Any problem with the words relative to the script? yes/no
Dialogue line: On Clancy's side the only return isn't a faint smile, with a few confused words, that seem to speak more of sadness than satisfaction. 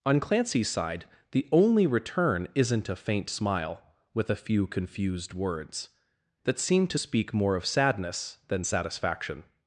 no